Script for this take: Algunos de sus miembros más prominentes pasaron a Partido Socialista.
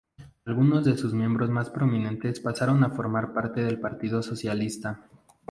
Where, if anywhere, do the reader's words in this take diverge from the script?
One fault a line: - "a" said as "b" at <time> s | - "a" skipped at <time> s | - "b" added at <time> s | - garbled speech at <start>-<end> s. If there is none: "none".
- "formar parte del" added at 2.9 s